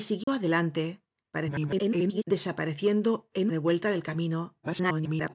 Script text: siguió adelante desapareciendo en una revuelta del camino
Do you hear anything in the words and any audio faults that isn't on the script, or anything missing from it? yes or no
yes